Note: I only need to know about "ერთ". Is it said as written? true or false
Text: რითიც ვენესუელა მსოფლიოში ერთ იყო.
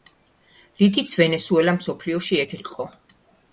true